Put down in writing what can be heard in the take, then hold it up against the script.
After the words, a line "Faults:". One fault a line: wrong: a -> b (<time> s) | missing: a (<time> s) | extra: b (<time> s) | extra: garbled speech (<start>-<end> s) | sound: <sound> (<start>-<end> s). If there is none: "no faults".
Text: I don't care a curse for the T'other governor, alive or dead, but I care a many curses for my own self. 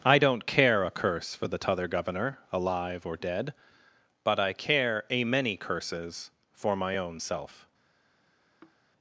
I don't care a curse for the T'other governor, alive or dead, but I care a many curses for my own self.
Faults:
sound: sigh (8.6-8.8 s)